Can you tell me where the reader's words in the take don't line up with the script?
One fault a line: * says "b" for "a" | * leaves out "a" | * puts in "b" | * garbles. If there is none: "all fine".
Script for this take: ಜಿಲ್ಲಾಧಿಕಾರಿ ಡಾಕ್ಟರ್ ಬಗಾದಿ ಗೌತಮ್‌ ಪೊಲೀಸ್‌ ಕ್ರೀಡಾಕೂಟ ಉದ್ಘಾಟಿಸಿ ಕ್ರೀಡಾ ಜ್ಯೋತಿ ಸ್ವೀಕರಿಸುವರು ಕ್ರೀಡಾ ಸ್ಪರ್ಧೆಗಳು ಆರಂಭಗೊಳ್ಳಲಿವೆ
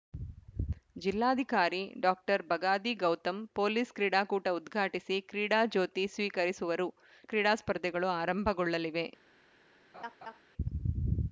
all fine